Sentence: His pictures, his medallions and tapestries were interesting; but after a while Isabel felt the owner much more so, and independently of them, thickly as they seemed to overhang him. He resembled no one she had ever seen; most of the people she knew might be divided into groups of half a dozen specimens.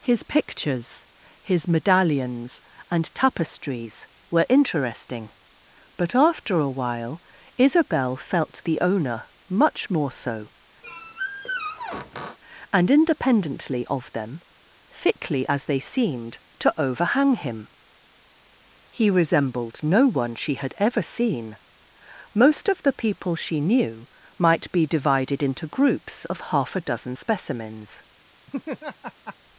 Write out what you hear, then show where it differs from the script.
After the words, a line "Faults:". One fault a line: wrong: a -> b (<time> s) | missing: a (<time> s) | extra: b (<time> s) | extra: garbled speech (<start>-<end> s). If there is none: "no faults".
His pictures, his medallions and tapestries were interesting; but after a while Isabel felt the owner much more so, and independently of them, thickly as they seemed to overhang him. He resembled no one she had ever seen; most of the people she knew might be divided into groups of half a dozen specimens.
Faults:
no faults